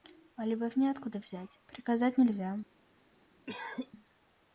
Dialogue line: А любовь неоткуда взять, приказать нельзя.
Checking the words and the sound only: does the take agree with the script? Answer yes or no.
no